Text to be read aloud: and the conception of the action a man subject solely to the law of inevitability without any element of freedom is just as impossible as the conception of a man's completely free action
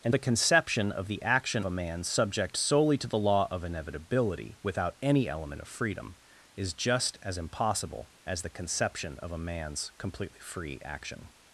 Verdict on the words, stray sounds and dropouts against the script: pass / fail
pass